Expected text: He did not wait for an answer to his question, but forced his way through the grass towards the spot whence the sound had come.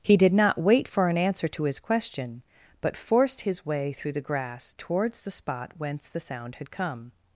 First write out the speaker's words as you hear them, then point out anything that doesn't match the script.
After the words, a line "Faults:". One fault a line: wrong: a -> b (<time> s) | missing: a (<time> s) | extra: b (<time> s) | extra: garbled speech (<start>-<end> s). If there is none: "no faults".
He did not wait for an answer to his question, but forced his way through the grass towards the spot whence the sound had come.
Faults:
no faults